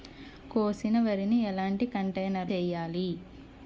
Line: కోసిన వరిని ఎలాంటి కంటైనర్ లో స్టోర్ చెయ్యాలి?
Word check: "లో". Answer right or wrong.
wrong